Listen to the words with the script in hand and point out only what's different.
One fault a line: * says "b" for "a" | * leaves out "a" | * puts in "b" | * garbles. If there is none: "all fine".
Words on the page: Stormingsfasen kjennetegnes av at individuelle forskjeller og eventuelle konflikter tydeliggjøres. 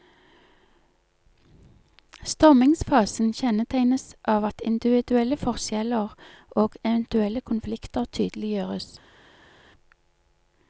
all fine